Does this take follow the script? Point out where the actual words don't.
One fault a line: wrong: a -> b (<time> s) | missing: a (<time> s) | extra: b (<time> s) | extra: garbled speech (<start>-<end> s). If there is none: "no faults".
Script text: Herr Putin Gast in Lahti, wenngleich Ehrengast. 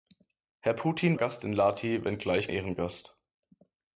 no faults